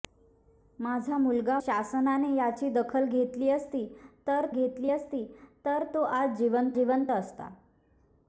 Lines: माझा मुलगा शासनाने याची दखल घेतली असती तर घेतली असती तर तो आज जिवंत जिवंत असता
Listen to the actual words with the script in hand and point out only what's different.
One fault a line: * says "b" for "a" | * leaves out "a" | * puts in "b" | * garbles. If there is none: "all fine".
all fine